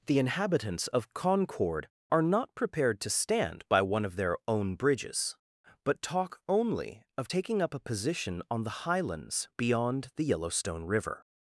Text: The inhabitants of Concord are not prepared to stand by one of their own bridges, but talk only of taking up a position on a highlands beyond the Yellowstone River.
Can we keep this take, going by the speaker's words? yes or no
no